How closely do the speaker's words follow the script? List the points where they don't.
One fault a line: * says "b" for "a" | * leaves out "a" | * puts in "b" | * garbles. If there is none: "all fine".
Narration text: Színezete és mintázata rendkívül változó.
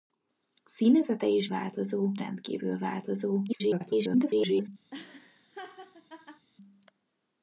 * says "változó" for "mintázata"
* garbles